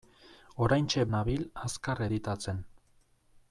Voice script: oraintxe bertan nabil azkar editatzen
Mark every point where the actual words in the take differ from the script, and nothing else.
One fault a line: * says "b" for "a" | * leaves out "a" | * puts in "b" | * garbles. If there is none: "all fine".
* leaves out "bertan"